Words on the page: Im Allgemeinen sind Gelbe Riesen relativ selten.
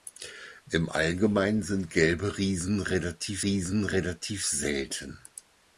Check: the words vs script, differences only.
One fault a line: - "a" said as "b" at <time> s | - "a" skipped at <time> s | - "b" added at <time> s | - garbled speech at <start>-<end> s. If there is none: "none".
- "Riesen relativ" added at 3.4 s